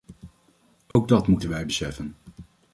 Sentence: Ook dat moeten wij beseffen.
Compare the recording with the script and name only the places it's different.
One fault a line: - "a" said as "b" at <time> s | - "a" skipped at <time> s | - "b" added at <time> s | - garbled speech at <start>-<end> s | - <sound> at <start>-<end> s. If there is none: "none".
- dropout at 0.9-1.0 s